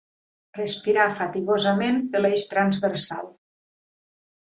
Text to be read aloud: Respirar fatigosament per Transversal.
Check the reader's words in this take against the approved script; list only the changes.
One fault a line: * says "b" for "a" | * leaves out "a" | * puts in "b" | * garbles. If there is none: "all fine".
* puts in "l'Eix"